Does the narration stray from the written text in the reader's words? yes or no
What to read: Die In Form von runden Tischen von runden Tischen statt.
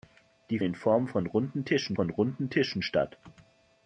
no